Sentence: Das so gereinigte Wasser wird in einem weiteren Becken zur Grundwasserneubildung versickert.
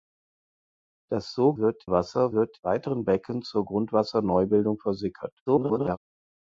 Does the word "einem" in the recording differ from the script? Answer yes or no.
yes